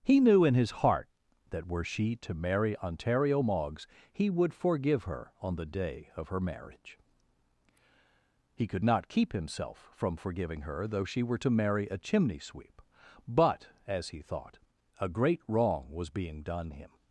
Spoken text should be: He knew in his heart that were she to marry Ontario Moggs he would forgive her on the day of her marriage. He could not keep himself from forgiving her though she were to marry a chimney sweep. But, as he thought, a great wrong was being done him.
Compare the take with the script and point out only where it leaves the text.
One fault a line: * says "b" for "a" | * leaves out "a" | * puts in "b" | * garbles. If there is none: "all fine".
all fine